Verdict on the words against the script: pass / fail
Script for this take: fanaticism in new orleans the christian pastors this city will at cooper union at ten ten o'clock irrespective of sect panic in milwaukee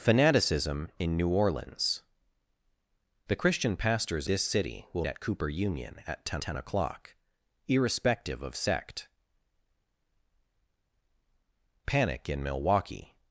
pass